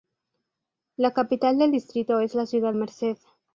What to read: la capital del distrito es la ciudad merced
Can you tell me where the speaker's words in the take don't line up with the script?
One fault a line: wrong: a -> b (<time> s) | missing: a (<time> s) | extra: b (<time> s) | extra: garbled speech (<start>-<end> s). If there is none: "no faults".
no faults